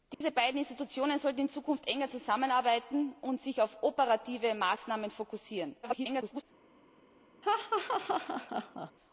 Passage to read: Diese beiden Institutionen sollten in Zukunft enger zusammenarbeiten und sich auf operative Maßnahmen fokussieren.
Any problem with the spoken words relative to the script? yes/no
yes